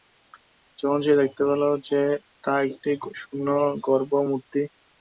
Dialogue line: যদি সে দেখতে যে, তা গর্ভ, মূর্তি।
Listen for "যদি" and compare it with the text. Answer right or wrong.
wrong